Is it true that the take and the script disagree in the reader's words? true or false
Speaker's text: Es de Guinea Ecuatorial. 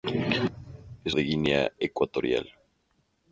false